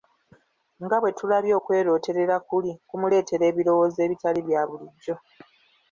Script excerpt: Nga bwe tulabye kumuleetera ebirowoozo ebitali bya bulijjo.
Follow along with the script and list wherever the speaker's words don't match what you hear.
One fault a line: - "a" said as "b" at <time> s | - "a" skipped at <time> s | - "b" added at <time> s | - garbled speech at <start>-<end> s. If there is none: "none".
- "okwerooterera kuli" added at 1.6 s